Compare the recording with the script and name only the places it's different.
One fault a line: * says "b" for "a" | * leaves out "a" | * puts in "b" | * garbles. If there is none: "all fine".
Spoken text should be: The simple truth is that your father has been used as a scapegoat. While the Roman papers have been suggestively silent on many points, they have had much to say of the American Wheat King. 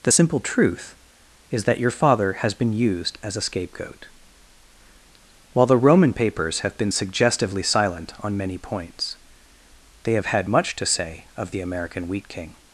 all fine